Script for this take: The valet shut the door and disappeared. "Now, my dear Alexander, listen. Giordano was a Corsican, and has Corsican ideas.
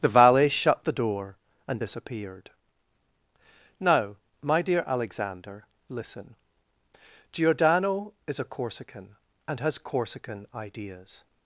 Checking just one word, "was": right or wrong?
wrong